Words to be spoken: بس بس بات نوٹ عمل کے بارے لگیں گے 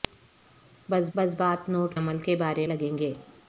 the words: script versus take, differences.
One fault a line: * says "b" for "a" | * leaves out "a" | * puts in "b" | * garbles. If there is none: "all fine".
all fine